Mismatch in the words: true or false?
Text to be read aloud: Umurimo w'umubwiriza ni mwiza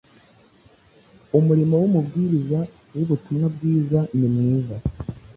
true